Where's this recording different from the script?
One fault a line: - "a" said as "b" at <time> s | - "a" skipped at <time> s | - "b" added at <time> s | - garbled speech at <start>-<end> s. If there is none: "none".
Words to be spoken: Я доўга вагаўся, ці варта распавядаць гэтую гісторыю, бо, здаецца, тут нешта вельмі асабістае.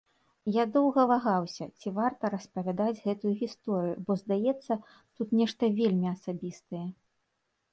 none